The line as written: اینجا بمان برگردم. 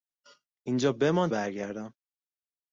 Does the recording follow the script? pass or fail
pass